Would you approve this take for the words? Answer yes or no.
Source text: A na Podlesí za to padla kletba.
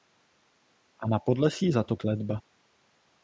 no